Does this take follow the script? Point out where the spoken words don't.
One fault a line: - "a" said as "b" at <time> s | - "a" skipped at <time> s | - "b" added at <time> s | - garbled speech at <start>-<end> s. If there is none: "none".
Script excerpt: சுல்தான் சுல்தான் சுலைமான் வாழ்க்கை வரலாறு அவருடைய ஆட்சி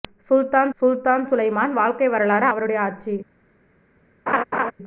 none